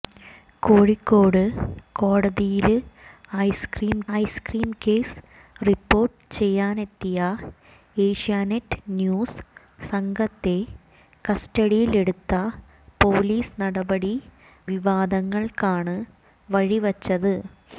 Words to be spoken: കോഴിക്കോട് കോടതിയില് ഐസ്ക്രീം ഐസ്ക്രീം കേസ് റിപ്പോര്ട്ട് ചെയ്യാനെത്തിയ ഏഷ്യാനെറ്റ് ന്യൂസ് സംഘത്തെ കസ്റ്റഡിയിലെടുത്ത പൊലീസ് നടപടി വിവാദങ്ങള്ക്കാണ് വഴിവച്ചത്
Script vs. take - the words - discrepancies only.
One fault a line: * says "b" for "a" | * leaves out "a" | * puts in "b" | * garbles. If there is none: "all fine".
all fine